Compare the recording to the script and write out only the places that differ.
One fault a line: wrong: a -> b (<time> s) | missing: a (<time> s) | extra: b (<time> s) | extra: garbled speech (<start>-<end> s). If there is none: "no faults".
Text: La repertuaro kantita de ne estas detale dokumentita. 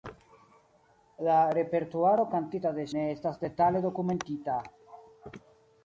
no faults